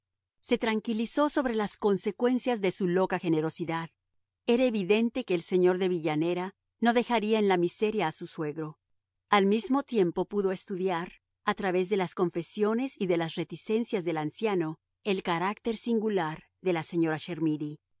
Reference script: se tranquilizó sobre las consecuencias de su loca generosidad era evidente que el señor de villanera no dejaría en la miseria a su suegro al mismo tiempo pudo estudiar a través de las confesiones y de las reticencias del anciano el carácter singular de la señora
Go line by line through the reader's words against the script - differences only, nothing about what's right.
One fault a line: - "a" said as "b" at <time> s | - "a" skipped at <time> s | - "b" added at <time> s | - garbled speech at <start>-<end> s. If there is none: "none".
none